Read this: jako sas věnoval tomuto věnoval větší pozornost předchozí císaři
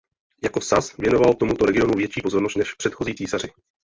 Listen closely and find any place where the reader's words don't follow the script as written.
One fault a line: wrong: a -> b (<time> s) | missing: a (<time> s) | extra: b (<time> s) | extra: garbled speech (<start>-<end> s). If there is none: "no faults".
wrong: věnoval -> regionu (1.6 s)
extra: než (2.6 s)